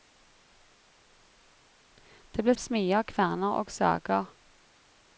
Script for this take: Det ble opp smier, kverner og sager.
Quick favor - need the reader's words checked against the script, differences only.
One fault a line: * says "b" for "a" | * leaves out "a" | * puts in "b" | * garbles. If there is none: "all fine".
all fine